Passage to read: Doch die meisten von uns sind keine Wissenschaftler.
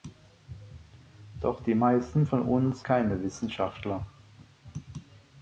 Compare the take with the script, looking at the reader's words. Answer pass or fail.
fail